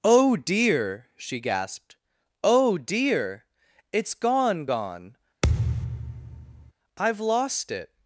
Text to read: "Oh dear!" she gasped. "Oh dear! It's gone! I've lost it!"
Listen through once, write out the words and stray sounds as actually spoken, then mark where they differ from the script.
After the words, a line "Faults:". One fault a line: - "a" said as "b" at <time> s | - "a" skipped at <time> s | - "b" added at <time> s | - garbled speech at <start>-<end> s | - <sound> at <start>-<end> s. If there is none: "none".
"Oh dear!" she gasped. "Oh dear! It's gone gone! I've lost it!"
Faults:
- "gone" added at 4.6 s
- thud at 5.4-6.7 s